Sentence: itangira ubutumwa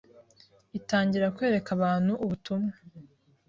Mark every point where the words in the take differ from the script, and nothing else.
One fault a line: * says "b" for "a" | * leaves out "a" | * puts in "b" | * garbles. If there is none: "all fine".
* puts in "kwereka abantu"